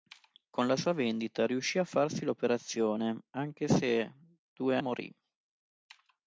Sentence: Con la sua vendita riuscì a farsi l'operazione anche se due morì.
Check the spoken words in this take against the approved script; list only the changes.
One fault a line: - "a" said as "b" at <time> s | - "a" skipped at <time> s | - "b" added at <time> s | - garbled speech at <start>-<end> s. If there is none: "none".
none